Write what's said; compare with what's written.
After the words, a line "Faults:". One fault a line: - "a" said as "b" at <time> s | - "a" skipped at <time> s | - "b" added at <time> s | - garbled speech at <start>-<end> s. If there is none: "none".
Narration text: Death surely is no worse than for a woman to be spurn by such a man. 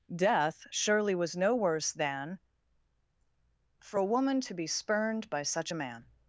Death surely was no worse than for a woman to be spurned by such a man.
Faults:
- "is" said as "was" at 1.1 s
- "spurn" said as "spurned" at 4.7 s